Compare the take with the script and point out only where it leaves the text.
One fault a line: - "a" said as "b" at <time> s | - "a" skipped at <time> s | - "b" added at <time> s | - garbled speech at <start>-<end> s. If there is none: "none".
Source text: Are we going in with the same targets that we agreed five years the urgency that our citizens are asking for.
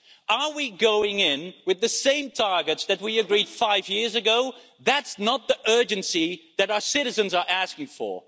- "ago That's not" added at 4.2 s